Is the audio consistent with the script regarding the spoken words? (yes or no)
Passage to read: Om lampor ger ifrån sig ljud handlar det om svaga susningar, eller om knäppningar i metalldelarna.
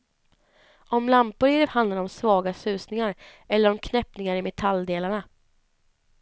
no